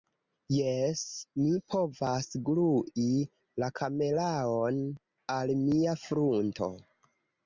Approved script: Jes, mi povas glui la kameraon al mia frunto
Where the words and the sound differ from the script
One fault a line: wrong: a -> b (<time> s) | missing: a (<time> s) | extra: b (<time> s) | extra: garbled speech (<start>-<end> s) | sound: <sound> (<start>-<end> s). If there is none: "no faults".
no faults